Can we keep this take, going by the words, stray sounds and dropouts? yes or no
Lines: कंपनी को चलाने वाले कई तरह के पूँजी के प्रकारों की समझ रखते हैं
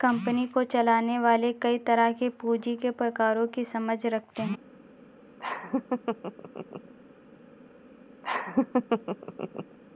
no